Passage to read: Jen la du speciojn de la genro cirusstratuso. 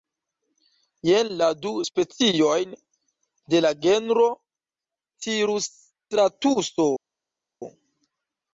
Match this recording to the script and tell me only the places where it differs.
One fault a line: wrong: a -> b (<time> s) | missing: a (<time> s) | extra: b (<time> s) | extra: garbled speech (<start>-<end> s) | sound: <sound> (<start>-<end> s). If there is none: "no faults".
no faults